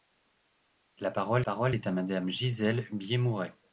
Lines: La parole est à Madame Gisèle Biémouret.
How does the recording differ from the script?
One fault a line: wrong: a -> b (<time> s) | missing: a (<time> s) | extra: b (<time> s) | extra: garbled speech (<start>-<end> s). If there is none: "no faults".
extra: parole (1.4 s)